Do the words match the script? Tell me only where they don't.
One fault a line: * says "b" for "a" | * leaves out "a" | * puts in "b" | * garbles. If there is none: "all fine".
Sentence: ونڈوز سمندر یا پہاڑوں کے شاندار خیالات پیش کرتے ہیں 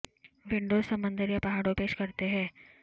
* leaves out "کے شاندار خیالات"